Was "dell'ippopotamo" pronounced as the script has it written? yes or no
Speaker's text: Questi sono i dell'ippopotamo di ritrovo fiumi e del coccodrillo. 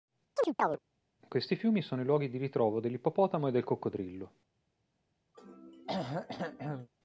no